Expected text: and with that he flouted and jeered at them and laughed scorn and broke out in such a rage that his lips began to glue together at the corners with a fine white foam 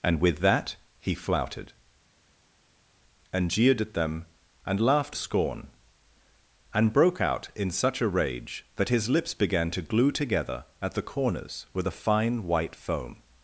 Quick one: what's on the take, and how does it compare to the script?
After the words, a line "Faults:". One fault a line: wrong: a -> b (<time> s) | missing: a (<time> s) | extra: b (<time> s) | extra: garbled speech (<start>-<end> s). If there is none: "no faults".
and with that he flouted and jeered at them and laughed scorn and broke out in such a rage that his lips began to glue together at the corners with a fine white foam
Faults:
no faults